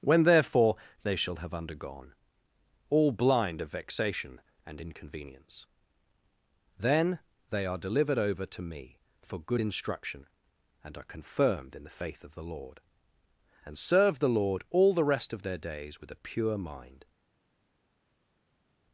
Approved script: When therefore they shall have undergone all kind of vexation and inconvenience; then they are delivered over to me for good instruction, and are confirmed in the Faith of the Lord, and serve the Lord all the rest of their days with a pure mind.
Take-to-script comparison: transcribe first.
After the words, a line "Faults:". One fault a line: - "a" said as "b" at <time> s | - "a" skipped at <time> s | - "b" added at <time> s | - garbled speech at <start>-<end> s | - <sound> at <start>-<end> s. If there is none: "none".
When therefore they shall have undergone all blind of vexation and inconvenience; then they are delivered over to me for good instruction, and are confirmed in the Faith of the Lord, and serve the Lord all the rest of their days with a pure mind.
Faults:
- "kind" said as "blind" at 3.1 s